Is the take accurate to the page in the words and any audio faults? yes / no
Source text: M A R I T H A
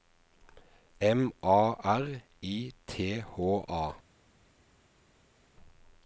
yes